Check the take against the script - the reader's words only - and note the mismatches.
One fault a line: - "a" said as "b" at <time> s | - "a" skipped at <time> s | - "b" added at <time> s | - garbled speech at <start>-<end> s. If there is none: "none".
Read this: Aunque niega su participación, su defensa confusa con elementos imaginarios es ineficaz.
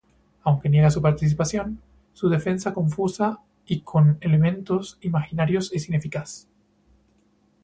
- "y" added at 3.7 s